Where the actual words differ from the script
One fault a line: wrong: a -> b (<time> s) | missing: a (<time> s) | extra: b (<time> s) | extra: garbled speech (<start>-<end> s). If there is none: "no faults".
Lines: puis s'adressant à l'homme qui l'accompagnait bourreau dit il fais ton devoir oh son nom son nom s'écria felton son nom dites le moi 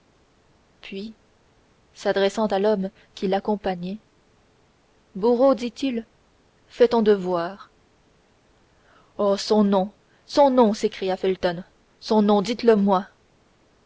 no faults